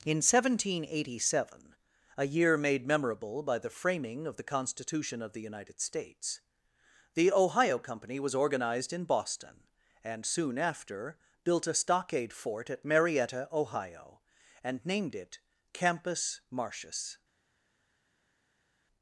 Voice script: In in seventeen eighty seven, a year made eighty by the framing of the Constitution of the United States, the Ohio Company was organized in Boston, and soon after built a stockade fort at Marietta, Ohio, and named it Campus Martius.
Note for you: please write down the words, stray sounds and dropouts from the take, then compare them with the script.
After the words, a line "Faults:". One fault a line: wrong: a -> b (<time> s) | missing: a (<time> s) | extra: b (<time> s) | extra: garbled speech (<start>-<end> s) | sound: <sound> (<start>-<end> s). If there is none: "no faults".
In seventeen eighty seven, a year made memorable by the framing of the Constitution of the United States, the Ohio Company was organized in Boston, and soon after built a stockade fort at Marietta, Ohio, and named it Campus Martius.
Faults:
missing: in (0.2 s)
wrong: eighty -> memorable (2.9 s)